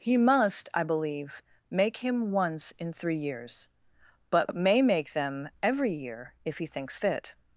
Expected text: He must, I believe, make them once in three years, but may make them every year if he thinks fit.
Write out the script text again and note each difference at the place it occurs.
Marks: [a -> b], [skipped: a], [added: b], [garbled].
He must, I believe, make [them -> him] once in three years, but may make them every year if he thinks fit.